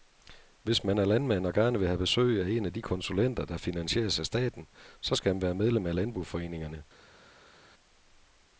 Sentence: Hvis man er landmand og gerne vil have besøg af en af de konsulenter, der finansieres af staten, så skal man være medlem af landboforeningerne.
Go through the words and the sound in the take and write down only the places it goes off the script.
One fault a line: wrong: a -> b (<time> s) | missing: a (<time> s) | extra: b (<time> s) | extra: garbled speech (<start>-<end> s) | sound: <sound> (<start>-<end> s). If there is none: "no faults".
no faults